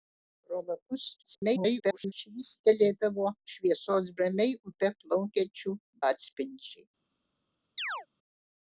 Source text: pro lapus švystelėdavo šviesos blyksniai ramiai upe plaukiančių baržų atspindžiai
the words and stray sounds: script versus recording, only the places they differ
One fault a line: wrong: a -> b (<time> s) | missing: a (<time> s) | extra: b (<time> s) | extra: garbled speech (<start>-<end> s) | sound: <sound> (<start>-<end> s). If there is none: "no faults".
extra: garbled speech (1.2-2.1 s)
missing: blyksniai (4.1 s)
missing: baržų (5.7 s)
sound: chirp (7.8-8.1 s)